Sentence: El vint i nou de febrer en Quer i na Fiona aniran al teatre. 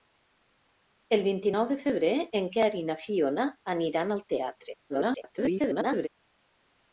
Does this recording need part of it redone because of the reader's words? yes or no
yes